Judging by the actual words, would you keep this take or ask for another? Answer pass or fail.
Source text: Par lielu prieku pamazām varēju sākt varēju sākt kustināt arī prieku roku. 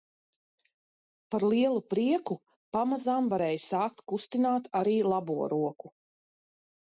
fail